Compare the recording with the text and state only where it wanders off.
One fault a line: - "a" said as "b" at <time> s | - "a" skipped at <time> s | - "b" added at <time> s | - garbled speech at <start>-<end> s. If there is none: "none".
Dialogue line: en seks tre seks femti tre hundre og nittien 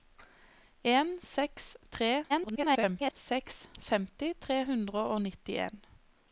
- garbled speech at 2.3-3.1 s